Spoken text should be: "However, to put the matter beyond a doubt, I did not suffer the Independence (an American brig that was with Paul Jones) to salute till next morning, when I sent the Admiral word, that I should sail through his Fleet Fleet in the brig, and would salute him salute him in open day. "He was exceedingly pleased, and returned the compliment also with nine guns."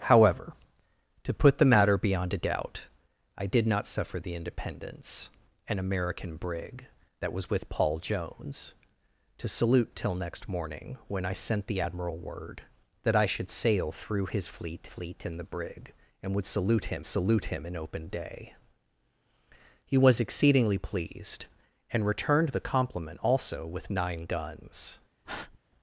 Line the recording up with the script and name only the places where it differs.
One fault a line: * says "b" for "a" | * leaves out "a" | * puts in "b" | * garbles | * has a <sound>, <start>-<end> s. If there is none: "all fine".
* has a breath, 25.2-25.6 s